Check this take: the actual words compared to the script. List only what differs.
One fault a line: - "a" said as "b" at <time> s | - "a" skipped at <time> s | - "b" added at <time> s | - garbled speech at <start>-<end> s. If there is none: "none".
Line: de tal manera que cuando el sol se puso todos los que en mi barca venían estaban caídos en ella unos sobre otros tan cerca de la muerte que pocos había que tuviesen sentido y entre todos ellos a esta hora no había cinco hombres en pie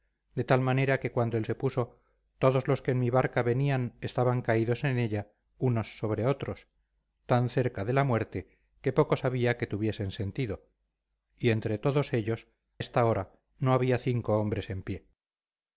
- "sol" skipped at 1.4 s
- "a" skipped at 12.5 s